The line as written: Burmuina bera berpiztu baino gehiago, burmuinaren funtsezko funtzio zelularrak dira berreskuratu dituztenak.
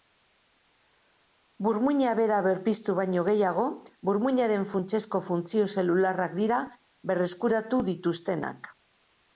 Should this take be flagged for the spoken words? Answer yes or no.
no